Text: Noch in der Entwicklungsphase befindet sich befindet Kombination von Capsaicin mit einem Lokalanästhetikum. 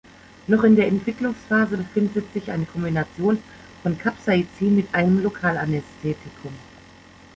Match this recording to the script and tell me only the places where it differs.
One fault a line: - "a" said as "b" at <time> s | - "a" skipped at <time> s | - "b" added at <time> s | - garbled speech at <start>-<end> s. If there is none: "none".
- "befindet" said as "eine" at 2.5 s